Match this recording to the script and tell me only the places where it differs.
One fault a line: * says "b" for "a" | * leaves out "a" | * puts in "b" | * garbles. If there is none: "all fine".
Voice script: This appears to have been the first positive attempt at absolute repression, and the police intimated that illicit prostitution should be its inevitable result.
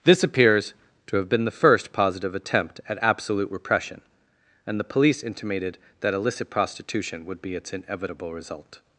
* says "would" for "should"